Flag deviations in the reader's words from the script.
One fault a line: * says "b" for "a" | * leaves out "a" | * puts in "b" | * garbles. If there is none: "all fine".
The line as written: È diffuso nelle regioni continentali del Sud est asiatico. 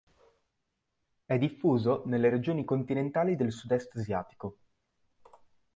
all fine